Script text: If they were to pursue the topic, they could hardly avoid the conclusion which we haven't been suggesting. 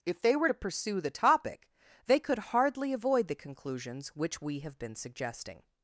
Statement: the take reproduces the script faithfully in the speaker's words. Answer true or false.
false